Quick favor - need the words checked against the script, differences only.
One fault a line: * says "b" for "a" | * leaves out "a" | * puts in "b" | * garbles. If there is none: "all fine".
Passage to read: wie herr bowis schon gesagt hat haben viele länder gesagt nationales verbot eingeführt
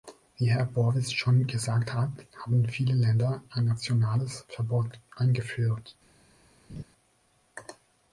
* says "ein" for "gesagt"